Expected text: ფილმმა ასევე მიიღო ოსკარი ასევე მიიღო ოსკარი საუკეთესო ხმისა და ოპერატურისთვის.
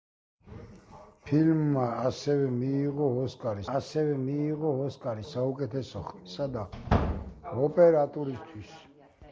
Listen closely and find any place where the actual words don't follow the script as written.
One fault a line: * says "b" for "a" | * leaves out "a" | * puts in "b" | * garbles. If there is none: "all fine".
all fine